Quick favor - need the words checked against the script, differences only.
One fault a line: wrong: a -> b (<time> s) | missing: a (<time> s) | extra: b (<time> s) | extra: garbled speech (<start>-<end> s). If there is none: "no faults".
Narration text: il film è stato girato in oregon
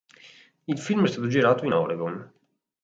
no faults